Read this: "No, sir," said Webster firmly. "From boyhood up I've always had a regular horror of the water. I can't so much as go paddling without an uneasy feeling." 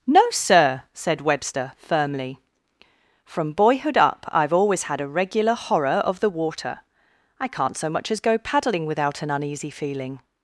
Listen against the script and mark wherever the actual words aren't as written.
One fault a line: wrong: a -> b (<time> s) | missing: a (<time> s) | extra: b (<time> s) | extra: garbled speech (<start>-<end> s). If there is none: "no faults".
no faults